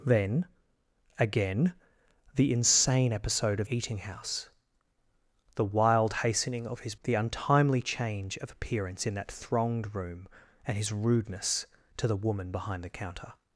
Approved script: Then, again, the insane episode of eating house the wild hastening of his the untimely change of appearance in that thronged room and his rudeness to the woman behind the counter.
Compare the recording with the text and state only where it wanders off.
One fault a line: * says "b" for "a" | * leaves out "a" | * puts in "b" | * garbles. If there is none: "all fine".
all fine